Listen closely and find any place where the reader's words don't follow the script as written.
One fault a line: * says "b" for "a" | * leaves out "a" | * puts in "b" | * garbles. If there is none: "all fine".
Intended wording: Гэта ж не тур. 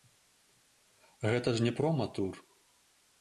* puts in "прома"